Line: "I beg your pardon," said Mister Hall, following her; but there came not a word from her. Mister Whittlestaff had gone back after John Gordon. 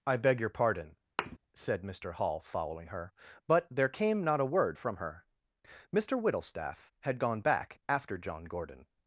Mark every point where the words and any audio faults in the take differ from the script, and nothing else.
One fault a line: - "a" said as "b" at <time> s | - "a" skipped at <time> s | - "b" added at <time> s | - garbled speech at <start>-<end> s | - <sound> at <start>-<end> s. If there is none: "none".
- thud at 1.2-1.4 s